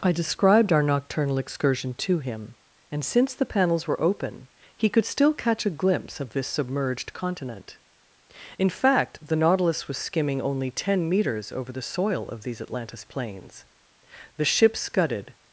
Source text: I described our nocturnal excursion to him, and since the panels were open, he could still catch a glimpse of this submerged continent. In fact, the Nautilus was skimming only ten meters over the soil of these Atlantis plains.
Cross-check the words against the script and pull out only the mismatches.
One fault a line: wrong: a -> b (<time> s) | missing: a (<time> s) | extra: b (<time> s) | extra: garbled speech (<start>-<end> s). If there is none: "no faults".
extra: The ship scudded (14.4 s)